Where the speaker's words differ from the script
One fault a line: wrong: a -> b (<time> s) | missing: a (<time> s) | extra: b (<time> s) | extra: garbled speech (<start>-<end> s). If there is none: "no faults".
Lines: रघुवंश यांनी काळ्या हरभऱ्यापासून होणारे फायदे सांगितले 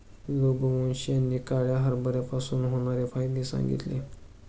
no faults